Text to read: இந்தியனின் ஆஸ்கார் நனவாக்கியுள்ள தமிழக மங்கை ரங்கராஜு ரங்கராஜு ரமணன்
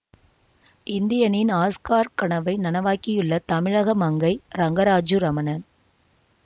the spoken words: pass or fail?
fail